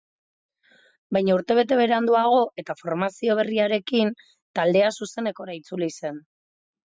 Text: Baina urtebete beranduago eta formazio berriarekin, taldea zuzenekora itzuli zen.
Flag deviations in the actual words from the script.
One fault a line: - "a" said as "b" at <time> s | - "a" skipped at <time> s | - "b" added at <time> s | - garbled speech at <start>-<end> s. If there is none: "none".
none